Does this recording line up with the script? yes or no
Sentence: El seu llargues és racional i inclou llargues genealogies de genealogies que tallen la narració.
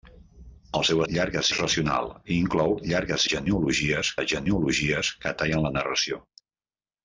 yes